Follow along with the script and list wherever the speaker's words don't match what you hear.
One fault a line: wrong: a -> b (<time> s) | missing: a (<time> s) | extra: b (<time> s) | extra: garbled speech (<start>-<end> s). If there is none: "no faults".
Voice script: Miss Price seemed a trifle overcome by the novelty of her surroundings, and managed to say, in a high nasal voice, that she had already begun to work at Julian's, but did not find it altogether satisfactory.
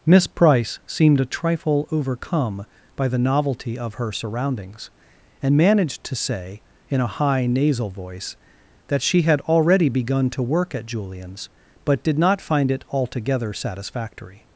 no faults